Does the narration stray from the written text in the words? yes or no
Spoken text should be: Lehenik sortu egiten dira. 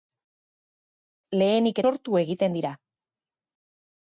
no